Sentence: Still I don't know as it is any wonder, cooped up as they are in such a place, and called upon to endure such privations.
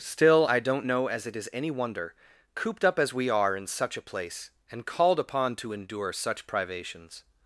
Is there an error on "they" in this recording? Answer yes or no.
yes